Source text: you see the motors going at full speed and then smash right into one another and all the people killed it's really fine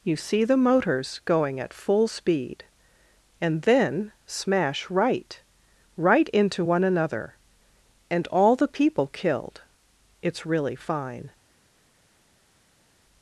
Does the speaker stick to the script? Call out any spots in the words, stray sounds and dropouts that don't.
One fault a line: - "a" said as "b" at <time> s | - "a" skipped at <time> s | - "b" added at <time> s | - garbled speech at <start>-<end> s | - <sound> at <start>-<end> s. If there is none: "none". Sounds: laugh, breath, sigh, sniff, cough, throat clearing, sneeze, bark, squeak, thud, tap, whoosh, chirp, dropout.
- "right" added at 6.0 s